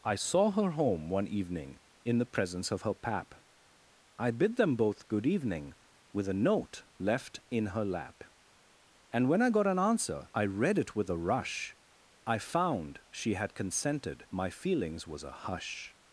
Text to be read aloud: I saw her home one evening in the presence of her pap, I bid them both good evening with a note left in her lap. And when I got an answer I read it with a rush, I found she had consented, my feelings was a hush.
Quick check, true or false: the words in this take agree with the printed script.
true